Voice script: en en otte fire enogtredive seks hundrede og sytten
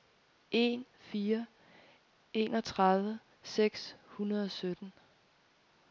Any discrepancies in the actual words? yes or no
yes